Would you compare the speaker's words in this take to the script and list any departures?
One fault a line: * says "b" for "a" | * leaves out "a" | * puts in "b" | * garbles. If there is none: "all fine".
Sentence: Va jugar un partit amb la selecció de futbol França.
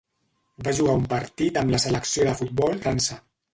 all fine